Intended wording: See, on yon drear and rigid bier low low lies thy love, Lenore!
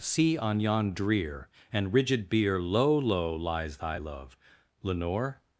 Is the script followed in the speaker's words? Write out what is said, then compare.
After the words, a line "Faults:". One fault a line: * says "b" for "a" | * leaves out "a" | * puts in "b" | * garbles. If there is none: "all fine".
See, on yon drear and rigid bier low low lies thy love, Lenore!
Faults:
all fine